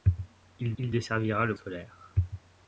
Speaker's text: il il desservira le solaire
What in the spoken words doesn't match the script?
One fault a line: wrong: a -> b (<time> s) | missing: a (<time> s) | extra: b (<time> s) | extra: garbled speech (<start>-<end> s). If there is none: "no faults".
no faults